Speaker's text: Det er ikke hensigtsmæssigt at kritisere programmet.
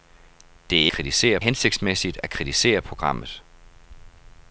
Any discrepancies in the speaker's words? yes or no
yes